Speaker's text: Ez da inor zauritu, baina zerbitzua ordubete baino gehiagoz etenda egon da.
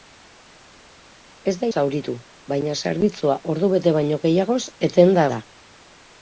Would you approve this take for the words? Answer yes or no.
no